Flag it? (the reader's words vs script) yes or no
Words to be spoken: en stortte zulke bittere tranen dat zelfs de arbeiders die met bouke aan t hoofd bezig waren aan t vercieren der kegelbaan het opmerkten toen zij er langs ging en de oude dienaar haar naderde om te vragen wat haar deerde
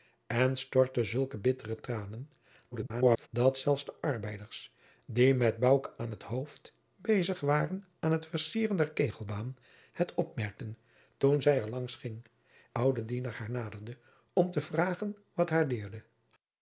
yes